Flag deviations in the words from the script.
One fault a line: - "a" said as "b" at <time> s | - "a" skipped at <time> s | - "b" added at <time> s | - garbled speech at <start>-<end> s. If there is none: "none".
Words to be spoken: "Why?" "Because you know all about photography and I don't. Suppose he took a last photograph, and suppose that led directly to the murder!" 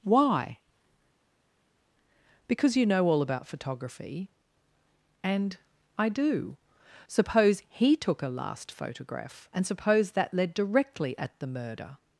- "don't" said as "do" at 6.1 s
- "to" said as "at" at 11.2 s